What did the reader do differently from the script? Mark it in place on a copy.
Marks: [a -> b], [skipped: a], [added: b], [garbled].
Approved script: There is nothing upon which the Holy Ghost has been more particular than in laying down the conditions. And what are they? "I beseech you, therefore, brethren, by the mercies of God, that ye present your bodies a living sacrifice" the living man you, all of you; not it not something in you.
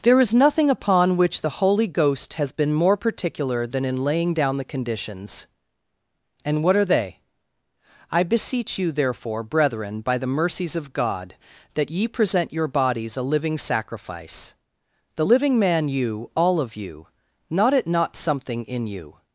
There is nothing upon which the Holy Ghost has been more particular than in laying down the conditions. And what are they? "I beseech you, therefore, brethren, by the mercies of God, that ye present your bodies a living sacrifice" the living man you, all of you; not it not something in you.